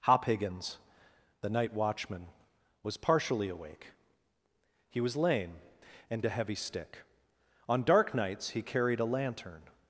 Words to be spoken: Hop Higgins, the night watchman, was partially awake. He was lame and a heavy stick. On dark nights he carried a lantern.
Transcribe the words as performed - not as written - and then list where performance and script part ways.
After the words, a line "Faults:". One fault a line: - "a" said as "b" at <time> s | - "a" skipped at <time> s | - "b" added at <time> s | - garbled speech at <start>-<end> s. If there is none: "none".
Hop Higgins, the night watchman, was partially awake. He was lame and a heavy stick. On dark nights he carried a lantern.
Faults:
none